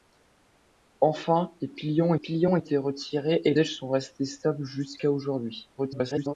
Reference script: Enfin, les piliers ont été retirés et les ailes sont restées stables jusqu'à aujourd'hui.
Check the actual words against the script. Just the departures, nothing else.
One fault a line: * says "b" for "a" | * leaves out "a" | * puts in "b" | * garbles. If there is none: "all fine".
* puts in "piliers ont"
* leaves out "les"
* garbles